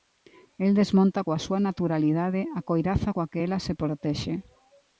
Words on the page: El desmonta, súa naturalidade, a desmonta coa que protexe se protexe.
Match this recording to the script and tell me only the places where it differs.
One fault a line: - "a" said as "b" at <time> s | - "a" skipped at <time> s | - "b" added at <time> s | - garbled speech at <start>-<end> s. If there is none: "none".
- "coa" added at 1.2 s
- "desmonta" said as "coiraza" at 2.7 s
- "protexe" said as "ela" at 3.4 s